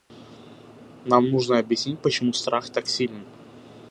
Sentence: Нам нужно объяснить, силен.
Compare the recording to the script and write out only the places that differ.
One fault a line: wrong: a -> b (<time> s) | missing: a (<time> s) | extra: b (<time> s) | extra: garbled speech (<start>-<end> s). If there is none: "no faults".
extra: почему страх так (2.0 s)